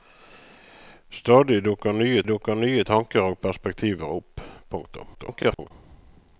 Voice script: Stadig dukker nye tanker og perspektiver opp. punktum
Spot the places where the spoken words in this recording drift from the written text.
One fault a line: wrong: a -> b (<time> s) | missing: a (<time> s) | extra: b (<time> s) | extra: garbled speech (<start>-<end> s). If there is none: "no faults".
extra: dukker nye (2.3 s)
extra: garbled speech (5.1-5.7 s)